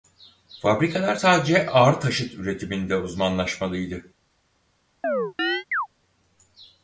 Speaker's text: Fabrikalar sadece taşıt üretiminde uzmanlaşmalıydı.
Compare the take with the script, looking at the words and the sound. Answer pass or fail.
fail